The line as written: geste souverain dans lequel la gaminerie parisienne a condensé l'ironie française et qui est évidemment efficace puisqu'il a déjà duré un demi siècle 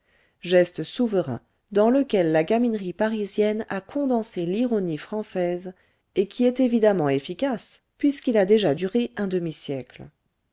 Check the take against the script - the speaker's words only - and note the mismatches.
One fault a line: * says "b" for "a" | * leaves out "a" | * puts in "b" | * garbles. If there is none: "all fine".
all fine